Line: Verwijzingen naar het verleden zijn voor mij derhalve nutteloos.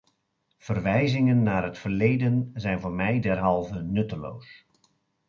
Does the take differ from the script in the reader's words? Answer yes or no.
no